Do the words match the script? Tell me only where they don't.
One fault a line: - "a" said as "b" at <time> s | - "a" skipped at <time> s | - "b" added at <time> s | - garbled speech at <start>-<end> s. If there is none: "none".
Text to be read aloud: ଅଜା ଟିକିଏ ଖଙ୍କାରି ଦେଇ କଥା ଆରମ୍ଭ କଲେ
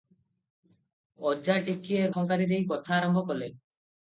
none